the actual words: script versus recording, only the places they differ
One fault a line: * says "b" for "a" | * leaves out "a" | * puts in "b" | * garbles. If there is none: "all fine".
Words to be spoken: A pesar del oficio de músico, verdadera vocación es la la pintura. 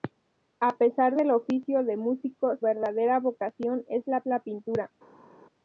all fine